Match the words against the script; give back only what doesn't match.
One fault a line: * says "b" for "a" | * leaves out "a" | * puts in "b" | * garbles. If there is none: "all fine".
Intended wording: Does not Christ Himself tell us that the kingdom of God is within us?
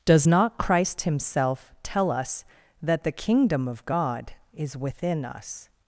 all fine